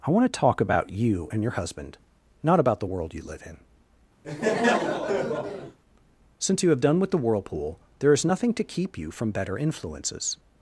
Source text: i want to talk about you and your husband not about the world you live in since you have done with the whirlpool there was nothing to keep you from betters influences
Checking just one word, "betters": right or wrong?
wrong